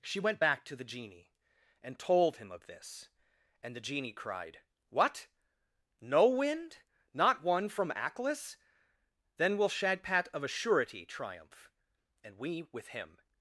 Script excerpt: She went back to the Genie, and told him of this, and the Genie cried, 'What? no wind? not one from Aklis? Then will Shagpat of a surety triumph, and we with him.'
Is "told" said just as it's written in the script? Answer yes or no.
yes